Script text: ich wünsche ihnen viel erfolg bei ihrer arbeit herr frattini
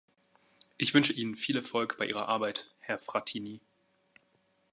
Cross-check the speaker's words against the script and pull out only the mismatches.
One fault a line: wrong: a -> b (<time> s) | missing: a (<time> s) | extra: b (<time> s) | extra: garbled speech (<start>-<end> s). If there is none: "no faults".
no faults